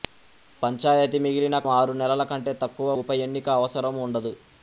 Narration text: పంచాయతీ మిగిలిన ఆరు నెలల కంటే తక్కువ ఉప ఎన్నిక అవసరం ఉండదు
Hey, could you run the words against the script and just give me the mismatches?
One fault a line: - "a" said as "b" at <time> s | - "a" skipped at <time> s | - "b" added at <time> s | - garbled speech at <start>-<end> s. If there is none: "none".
none